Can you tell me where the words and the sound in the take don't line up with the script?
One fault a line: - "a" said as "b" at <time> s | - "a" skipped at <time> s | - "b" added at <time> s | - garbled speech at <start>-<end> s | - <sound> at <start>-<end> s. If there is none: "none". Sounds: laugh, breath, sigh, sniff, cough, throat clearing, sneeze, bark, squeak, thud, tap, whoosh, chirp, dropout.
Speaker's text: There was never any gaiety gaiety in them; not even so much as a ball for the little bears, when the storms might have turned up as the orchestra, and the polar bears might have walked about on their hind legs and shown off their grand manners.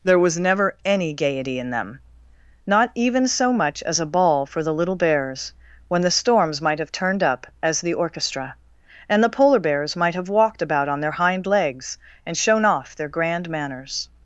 - "gaiety" skipped at 1.6 s